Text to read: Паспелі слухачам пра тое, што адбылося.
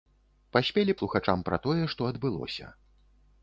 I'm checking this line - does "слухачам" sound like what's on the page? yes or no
yes